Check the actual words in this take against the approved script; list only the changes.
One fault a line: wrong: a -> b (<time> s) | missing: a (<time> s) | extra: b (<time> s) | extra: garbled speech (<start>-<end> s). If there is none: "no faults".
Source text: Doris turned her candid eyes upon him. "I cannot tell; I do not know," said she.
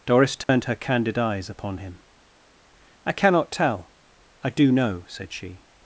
missing: not (4.7 s)